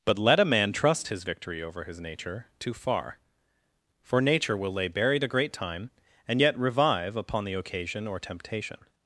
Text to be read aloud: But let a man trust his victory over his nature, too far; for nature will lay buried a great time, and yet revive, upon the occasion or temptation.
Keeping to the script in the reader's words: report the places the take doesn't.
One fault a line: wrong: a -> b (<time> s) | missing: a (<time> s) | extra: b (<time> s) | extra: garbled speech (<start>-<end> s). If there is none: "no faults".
no faults